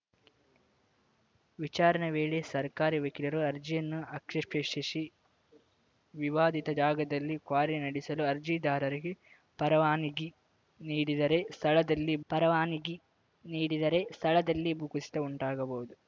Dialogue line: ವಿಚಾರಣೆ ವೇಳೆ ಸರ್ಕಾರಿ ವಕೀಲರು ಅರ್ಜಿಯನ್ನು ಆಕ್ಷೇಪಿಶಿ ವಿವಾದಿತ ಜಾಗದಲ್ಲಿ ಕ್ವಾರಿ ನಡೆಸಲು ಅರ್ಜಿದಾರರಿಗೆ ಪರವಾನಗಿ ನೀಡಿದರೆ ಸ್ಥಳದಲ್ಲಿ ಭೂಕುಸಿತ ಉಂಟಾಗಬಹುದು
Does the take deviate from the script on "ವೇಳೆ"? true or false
false